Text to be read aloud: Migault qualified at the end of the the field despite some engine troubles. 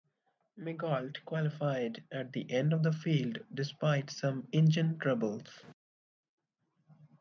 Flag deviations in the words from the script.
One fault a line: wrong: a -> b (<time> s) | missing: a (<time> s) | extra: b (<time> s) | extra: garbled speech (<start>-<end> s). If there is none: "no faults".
missing: the (2.9 s)